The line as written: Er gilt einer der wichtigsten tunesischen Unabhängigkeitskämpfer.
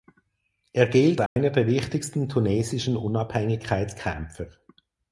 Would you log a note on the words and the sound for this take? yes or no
yes